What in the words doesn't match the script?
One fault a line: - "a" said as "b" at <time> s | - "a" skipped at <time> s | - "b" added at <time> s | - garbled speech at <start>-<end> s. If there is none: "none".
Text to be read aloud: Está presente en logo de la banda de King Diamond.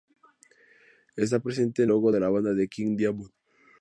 none